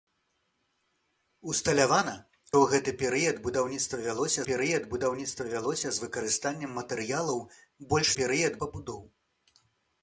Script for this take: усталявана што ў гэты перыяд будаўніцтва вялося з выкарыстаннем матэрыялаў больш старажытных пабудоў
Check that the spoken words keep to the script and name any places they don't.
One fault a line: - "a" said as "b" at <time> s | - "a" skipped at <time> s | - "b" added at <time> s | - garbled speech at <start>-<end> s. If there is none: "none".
- "што" skipped at 2.1 s
- "перыяд будаўніцтва вялося" added at 4.5 s
- "старажытных" said as "перыяд" at 8.2 s